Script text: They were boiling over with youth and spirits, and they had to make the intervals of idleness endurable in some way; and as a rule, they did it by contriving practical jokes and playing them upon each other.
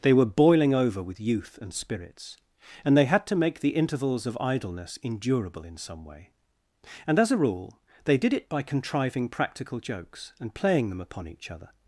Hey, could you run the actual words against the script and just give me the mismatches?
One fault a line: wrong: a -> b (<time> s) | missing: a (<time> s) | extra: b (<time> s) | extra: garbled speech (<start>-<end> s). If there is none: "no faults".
no faults